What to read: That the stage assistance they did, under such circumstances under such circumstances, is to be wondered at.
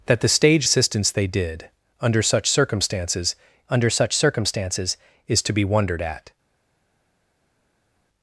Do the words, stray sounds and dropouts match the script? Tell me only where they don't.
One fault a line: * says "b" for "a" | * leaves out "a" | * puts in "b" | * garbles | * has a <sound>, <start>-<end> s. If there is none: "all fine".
all fine